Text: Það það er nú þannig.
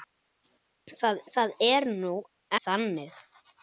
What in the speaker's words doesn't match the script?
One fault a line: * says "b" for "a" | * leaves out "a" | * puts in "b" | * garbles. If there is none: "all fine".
all fine